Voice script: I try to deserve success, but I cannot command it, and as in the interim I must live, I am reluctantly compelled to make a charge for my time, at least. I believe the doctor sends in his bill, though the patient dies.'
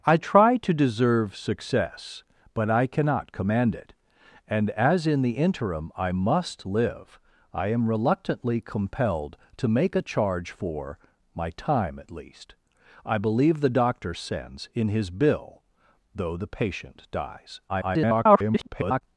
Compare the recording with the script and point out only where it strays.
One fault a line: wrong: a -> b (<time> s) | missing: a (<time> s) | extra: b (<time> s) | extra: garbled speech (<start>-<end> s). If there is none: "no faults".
extra: garbled speech (17.7-19.0 s)